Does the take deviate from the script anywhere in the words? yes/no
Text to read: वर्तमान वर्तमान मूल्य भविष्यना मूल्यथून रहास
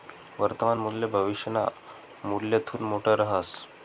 yes